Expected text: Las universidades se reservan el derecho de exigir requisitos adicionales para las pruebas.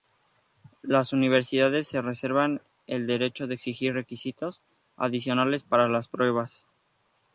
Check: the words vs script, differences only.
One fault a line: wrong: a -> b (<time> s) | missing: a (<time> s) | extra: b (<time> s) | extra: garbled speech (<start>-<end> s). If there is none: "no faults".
no faults